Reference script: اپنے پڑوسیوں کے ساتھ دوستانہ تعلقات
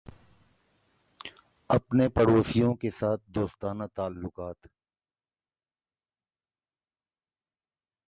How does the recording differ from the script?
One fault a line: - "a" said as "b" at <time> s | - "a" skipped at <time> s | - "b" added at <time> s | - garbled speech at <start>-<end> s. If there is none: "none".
none